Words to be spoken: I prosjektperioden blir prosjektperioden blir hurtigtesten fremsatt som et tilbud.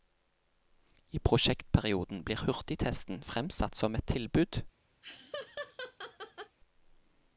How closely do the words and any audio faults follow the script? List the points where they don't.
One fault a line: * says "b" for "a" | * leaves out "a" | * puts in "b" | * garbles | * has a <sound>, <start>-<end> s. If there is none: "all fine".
* leaves out "prosjektperioden blir"
* has a laugh, 5.0-6.6 s